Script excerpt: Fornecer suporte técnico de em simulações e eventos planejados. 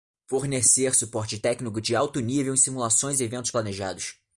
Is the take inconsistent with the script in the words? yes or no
yes